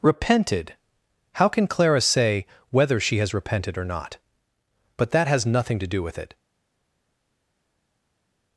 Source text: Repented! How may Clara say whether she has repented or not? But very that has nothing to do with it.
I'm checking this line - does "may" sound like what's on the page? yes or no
no